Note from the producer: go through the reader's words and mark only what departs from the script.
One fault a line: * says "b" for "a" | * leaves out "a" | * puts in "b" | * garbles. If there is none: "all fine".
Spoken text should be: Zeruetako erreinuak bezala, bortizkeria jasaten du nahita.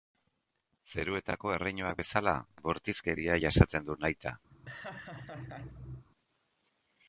all fine